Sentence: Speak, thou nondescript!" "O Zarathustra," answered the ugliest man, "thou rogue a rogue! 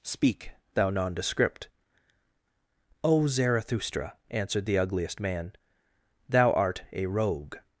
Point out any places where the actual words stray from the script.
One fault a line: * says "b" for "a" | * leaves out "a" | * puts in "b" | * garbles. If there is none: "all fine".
* says "art" for "rogue"